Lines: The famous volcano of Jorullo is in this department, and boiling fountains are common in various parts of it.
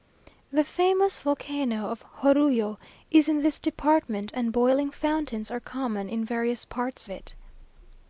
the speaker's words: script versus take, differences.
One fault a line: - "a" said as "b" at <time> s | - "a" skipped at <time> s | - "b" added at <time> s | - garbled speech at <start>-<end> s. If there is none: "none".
- "of" skipped at 7.1 s